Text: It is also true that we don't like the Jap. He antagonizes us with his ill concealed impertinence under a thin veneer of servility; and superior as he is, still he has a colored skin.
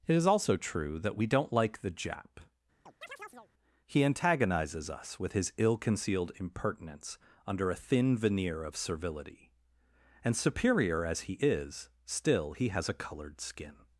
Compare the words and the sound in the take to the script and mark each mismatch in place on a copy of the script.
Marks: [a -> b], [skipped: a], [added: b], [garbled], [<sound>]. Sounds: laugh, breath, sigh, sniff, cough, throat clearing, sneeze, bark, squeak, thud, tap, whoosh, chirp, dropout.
It is also true that we don't like the Jap. [chirp] He antagonizes us with his ill concealed impertinence under a thin veneer of servility; and superior as he is, still he has a colored skin.